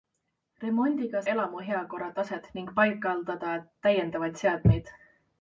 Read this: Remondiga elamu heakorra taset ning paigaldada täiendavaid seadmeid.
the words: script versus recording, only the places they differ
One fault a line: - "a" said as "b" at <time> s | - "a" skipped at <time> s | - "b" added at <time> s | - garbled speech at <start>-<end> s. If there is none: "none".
none